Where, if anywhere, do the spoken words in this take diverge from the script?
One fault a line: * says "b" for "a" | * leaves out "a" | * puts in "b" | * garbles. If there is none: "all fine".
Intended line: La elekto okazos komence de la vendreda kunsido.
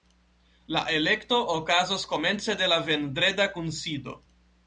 all fine